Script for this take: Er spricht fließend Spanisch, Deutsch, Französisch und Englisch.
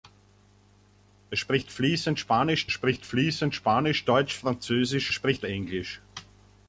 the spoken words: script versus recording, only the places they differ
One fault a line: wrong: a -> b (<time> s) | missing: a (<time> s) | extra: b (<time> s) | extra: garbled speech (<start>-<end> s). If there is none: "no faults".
extra: spricht fließend Spanisch (2.7 s)
wrong: und -> spricht (5.1 s)